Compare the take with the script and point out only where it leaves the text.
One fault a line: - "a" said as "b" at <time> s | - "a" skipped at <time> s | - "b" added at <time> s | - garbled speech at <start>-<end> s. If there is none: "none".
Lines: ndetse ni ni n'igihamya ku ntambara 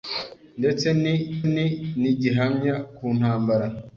none